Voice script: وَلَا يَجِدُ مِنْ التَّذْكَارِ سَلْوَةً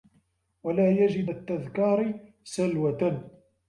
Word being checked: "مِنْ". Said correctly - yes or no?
no